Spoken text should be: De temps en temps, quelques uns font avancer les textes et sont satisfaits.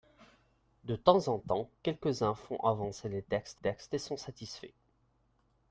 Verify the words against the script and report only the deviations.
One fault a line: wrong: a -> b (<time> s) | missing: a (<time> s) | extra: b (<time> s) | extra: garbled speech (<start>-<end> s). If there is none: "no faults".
extra: textes (3.5 s)